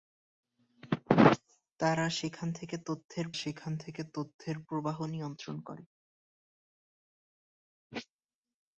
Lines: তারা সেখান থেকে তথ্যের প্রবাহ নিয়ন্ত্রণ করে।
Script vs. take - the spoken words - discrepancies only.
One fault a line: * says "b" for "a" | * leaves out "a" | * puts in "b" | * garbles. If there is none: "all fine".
* puts in "সেখান থেকে তথ্যের"